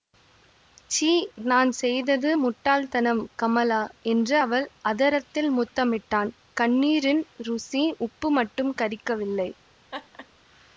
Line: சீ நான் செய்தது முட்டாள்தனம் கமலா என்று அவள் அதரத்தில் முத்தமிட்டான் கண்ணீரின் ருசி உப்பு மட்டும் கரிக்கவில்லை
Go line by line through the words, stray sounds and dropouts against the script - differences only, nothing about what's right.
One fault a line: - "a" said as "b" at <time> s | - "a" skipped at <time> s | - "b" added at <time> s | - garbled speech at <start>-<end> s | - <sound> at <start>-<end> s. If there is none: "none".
- laugh at 9.9-10.3 s